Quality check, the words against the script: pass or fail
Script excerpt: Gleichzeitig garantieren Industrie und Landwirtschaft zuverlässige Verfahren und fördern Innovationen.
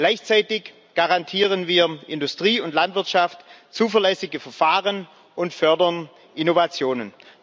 fail